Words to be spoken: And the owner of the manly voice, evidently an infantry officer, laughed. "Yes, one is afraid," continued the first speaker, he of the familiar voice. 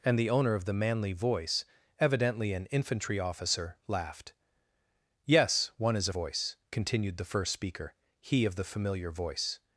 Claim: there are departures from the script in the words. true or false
true